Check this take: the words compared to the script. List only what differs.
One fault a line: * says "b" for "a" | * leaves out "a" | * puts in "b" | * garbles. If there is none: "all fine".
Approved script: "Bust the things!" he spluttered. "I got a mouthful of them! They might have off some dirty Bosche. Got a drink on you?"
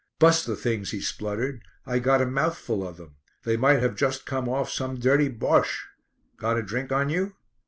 * puts in "just come"